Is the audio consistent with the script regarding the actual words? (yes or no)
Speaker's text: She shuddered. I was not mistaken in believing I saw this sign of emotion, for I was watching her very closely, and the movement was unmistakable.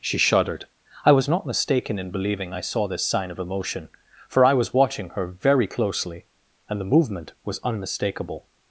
yes